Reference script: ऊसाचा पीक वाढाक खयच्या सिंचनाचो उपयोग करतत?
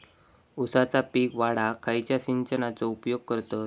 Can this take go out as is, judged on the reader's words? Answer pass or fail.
pass